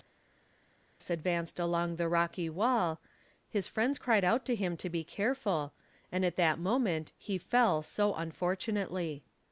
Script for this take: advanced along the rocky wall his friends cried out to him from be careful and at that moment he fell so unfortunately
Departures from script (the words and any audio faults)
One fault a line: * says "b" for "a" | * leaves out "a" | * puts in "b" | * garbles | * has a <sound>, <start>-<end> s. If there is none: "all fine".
* says "to" for "from"